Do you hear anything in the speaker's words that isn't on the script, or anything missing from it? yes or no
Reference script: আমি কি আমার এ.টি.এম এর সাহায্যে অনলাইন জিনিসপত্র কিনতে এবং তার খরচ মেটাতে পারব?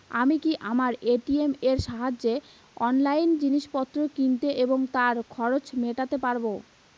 no